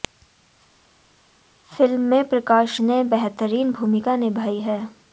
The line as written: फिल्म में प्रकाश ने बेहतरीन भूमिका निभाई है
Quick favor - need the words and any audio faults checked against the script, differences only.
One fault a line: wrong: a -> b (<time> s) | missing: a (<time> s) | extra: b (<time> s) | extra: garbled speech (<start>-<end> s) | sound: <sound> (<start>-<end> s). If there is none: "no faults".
no faults